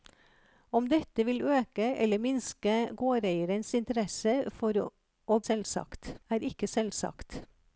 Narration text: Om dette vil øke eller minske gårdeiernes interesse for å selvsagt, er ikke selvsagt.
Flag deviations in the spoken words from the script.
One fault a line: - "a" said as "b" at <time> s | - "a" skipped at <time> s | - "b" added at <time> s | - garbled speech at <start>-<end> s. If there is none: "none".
none